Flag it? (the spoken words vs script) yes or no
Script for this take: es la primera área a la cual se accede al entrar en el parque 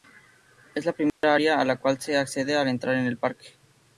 no